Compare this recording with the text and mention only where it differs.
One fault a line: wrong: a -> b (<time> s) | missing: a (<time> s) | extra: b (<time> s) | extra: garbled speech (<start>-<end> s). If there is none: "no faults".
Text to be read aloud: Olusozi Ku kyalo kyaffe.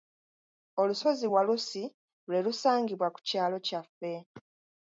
extra: Walusi lwe lusangibwa (1.3 s)